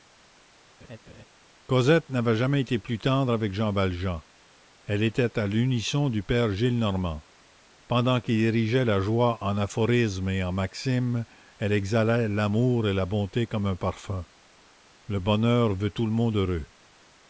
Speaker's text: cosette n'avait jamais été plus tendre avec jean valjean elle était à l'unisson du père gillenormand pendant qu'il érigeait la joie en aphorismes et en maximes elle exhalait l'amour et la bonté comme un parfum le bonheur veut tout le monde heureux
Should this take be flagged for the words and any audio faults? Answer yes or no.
yes